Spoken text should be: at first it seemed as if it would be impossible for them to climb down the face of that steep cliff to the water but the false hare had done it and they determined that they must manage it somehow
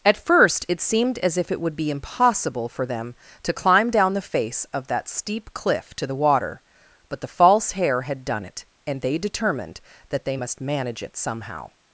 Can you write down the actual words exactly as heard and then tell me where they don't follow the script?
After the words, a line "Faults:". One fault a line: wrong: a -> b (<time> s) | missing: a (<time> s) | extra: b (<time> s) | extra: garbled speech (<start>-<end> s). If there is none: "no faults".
at first it seemed as if it would be impossible for them to climb down the face of that steep cliff to the water but the false hare had done it and they determined that they must manage it somehow
Faults:
no faults